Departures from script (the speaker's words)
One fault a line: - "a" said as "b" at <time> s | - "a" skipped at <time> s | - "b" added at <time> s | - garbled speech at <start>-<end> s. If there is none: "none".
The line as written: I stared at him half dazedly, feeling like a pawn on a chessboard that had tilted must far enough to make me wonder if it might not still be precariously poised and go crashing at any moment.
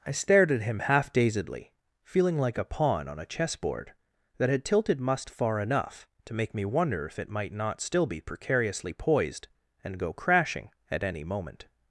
none